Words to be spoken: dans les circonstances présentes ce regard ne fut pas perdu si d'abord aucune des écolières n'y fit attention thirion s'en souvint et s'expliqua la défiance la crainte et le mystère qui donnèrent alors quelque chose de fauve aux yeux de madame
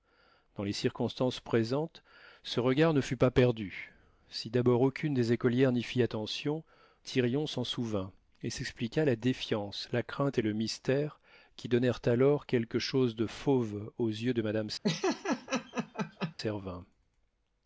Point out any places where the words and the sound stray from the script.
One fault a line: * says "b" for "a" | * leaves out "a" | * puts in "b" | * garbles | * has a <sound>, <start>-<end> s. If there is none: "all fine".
* has a laugh, 14.8-16.3 s